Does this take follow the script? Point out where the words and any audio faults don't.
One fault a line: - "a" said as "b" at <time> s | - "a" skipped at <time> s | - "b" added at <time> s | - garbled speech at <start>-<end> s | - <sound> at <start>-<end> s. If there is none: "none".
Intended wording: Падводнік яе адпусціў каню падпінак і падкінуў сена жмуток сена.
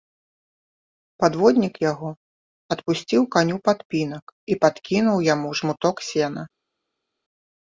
- "яе" said as "яго" at 1.9 s
- "сена" said as "яму" at 5.3 s